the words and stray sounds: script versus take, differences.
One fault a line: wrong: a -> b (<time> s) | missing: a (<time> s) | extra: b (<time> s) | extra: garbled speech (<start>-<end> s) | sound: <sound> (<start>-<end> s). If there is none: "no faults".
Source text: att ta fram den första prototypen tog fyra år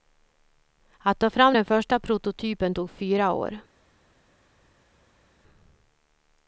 no faults